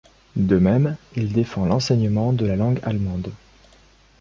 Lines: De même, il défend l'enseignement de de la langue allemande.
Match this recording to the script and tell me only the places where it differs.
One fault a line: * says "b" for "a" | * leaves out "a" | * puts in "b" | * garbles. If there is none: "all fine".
* leaves out "de"